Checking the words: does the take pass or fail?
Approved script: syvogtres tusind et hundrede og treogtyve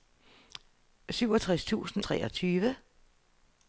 fail